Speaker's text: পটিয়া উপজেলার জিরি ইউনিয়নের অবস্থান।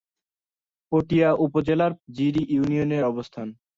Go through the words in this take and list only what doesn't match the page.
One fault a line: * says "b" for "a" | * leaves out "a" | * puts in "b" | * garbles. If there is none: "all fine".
all fine